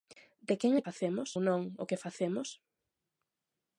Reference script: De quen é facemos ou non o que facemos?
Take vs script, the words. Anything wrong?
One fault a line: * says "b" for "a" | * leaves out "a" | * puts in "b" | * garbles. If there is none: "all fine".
all fine